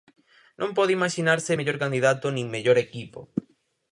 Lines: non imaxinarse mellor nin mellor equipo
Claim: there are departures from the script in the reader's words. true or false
true